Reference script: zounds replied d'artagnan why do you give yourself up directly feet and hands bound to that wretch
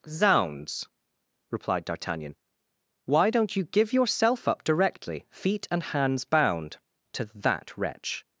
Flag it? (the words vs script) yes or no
yes